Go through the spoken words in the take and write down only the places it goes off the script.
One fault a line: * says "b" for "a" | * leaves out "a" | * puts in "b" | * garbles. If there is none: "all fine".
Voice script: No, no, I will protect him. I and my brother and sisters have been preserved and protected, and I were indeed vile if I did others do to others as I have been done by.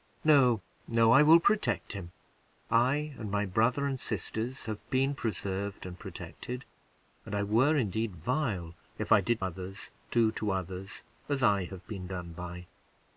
all fine